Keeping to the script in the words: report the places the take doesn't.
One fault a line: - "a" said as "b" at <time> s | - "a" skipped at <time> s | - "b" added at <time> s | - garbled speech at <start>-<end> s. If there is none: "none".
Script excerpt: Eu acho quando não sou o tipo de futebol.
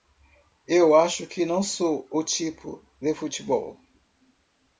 - "quando" said as "que" at 1.3 s